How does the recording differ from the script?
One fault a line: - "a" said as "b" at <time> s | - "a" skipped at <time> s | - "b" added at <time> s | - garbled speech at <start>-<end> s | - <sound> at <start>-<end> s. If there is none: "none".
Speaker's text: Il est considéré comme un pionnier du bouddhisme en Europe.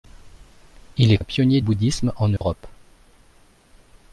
- "considéré comme" skipped at 1.2 s
- "du" skipped at 1.6 s
- dropout at 2.4-2.4 s